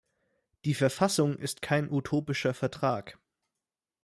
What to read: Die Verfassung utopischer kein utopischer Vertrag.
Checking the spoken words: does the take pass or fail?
fail